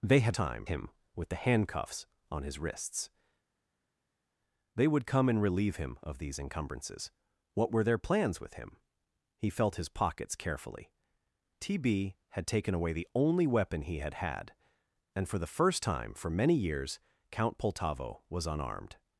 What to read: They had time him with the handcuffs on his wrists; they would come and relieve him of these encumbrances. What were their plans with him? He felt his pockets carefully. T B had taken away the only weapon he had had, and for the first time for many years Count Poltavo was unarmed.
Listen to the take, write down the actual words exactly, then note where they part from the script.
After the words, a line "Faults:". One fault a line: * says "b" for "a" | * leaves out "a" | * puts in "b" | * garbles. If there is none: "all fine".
They had time him with the handcuffs on his wrists; they would come and relieve him of these encumbrances. What were their plans with him? He felt his pockets carefully. T B had taken away the only weapon he had had, and for the first time for many years Count Poltavo was unarmed.
Faults:
all fine